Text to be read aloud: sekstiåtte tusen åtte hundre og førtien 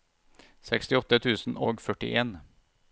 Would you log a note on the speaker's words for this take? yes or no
yes